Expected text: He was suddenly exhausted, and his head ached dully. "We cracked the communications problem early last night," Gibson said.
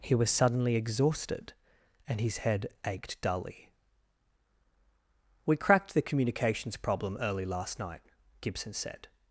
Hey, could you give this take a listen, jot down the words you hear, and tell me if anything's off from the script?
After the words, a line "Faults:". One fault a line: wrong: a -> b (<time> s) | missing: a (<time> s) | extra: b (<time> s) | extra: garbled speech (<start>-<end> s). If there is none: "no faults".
He was suddenly exhausted, and his head ached dully. "We cracked the communications problem early last night," Gibson said.
Faults:
no faults